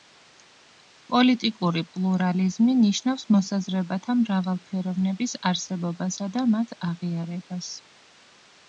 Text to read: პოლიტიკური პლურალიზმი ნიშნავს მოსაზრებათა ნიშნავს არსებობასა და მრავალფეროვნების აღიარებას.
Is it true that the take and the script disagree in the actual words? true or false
true